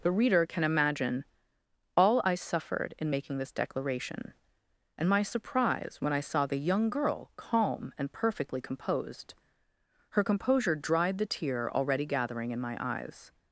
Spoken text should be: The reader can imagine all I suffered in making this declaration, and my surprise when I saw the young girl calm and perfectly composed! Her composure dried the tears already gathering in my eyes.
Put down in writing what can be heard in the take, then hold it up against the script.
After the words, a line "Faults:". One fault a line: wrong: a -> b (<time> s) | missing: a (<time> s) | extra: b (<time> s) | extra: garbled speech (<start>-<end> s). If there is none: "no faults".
The reader can imagine all I suffered in making this declaration, and my surprise when I saw the young girl calm and perfectly composed! Her composure dried the tear already gathering in my eyes.
Faults:
wrong: tears -> tear (11.3 s)